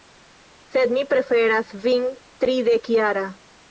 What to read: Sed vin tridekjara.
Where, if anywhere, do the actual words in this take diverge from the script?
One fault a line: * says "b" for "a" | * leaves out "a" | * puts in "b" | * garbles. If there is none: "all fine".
* puts in "mi preferas"